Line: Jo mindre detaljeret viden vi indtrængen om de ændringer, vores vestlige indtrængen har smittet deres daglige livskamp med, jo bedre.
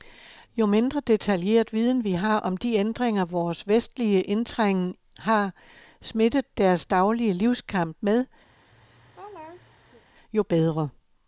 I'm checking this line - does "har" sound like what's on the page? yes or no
yes